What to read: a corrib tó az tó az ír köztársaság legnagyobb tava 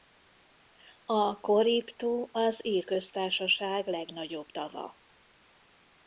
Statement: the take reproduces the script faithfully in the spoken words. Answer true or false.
false